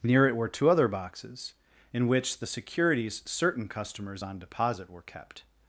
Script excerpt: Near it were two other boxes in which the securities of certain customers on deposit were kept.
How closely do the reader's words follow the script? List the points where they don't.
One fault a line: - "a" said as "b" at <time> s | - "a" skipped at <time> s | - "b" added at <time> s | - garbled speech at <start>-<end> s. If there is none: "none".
- "of" skipped at 3.2 s